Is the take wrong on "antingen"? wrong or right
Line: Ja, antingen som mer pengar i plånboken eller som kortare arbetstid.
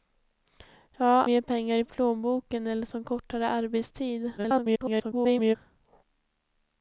wrong